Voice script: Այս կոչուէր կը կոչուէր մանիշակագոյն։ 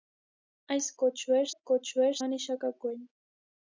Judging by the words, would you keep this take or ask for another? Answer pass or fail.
pass